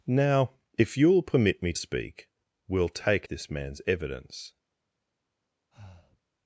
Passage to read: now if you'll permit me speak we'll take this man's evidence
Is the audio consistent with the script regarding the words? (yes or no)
yes